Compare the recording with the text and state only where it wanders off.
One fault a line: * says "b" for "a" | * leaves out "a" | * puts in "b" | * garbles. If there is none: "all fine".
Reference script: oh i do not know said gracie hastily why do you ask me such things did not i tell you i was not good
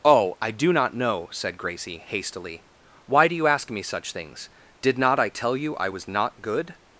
all fine